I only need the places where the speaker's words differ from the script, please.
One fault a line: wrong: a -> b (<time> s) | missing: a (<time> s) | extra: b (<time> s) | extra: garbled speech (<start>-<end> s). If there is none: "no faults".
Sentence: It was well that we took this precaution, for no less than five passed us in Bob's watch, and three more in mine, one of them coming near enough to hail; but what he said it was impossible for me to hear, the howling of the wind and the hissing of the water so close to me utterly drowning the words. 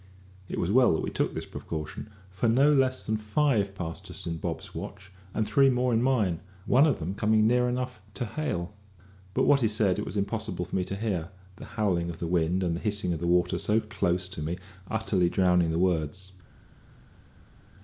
no faults